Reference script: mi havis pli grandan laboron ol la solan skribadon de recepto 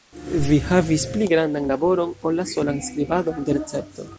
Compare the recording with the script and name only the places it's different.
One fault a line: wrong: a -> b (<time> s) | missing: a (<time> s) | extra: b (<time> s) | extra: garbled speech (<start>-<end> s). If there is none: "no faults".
wrong: mi -> vi (0.5 s)